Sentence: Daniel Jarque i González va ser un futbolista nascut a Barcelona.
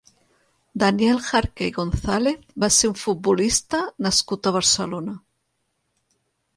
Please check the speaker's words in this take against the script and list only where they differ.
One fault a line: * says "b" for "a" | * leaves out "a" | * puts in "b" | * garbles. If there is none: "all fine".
all fine